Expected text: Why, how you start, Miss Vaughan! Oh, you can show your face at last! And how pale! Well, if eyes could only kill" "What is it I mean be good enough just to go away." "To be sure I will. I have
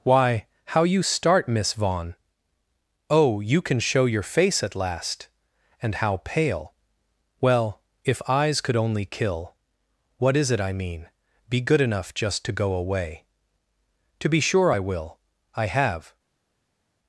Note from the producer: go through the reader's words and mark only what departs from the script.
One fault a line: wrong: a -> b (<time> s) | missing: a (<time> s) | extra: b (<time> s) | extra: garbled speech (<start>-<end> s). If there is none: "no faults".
no faults